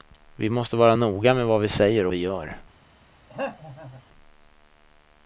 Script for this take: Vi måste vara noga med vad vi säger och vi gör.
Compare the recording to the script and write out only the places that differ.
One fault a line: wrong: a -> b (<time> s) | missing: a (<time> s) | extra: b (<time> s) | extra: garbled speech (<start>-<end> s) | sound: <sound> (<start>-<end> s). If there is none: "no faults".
sound: throat clearing (3.3-4.0 s)